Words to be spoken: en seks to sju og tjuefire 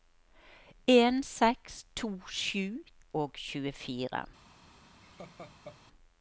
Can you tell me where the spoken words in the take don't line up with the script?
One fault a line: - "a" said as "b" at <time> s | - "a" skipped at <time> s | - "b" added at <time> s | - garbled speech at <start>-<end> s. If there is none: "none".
none